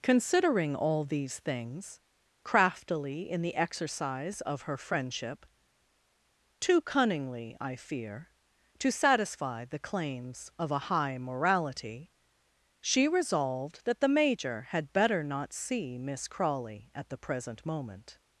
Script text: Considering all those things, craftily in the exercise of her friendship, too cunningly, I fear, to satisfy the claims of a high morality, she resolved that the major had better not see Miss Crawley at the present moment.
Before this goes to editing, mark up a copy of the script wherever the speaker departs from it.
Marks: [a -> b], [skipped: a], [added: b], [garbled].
Considering all [those -> these] things, craftily in the exercise of her friendship, too cunningly, I fear, to satisfy the claims of a high morality, she resolved that the major had better not see Miss Crawley at the present moment.